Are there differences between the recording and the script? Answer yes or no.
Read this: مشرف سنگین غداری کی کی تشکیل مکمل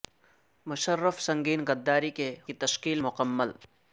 no